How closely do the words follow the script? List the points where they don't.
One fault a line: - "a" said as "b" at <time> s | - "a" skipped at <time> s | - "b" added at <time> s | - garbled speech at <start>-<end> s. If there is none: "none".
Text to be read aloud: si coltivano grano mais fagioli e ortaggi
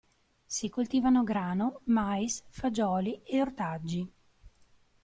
none